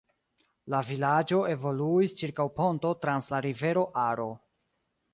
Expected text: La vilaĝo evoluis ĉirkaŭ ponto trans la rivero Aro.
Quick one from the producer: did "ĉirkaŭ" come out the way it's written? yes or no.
yes